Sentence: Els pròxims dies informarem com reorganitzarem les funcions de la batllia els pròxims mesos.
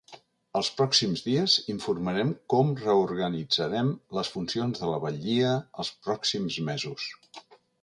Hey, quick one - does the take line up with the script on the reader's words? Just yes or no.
yes